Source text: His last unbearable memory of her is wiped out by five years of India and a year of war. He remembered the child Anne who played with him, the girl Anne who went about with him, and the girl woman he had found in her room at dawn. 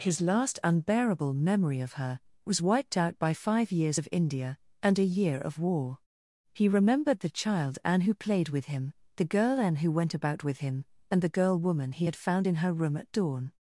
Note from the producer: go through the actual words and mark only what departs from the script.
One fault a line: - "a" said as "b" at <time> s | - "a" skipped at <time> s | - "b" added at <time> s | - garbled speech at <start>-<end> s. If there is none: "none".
- "is" said as "was" at 2.4 s